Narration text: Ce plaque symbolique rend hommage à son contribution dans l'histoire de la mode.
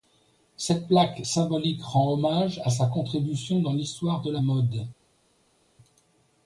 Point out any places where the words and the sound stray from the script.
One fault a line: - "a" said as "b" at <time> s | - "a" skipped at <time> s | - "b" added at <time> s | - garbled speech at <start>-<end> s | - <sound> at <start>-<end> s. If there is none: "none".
- "Ce" said as "Cette" at 0.6 s
- "son" said as "sa" at 2.7 s